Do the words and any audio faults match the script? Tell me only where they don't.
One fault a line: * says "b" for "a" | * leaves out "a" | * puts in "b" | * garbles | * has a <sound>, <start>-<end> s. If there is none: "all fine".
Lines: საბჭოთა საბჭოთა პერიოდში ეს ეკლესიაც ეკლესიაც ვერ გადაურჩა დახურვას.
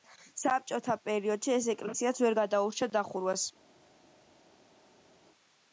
* leaves out "საბჭოთა"
* leaves out "ეკლესიაც"